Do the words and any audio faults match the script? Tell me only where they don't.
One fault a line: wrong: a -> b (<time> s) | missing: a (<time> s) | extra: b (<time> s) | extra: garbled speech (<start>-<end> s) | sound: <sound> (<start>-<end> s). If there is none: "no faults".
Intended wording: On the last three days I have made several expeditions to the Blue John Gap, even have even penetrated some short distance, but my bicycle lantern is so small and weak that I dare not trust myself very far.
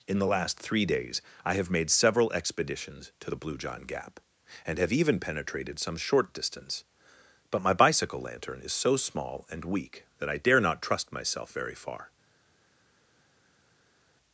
wrong: On -> In (0.1 s)
wrong: even -> and (4.6 s)